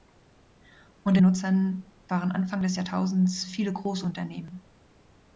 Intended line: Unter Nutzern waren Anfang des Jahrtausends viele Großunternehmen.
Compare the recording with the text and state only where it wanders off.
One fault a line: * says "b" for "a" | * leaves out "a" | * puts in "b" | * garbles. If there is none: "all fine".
all fine